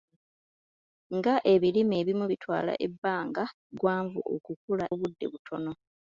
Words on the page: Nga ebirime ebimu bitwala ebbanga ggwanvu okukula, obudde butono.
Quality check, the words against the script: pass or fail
pass